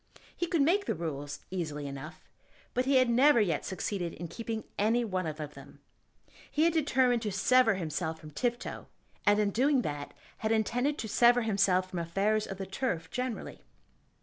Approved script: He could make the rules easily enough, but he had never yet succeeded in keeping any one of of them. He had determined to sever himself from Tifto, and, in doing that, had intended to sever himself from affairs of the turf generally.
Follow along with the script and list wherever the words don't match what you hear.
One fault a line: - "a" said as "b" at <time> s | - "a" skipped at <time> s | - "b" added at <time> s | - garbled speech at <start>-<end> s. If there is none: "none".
none